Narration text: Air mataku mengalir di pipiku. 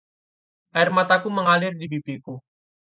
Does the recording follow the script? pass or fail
pass